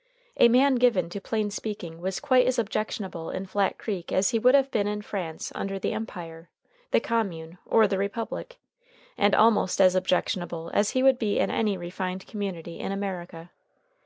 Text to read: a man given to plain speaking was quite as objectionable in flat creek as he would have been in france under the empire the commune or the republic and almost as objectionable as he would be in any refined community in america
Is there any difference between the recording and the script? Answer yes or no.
no